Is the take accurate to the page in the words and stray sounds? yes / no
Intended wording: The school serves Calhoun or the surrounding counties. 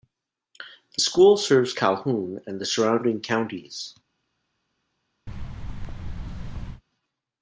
no